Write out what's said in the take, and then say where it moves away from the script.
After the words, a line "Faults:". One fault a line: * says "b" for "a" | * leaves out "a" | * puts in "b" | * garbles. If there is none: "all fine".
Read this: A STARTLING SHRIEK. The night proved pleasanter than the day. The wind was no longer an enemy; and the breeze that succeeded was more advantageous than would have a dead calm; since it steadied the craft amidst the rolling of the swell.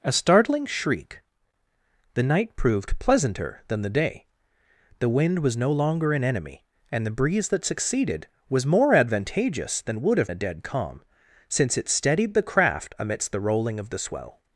A STARTLING SHRIEK. The night proved pleasanter than the day. The wind was no longer an enemy; and the breeze that succeeded was more advantageous than would have a dead calm; since it steadied the craft amidst the rolling of the swell.
Faults:
all fine